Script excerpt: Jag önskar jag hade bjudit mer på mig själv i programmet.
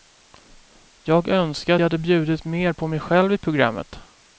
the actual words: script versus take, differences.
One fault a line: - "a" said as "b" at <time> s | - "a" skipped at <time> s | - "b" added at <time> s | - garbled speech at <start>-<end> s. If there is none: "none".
none